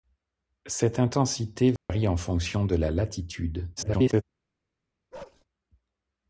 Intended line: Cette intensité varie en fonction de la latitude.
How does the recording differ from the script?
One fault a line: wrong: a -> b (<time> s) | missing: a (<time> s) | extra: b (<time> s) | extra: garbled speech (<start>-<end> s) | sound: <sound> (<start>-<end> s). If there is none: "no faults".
sound: dropout (1.8-1.9 s)
extra: garbled speech (3.8-4.2 s)
sound: bark (5.1-5.4 s)